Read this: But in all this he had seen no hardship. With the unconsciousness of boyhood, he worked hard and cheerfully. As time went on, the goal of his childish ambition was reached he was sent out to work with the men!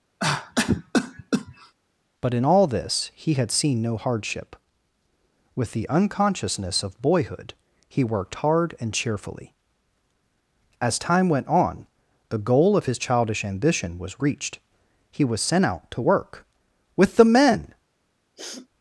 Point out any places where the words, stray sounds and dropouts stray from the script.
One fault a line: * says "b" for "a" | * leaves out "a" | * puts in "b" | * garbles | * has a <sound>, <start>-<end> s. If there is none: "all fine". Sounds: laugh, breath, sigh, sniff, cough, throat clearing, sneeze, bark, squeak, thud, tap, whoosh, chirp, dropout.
* has a cough, 0.2-1.7 s
* has a sniff, 18.4-18.7 s